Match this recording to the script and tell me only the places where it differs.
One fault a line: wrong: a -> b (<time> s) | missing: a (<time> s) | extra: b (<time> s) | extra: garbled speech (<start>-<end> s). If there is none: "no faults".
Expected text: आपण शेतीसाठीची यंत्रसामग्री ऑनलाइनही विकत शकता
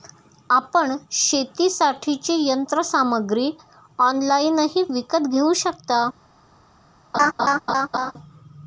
extra: घेऊ (5.3 s)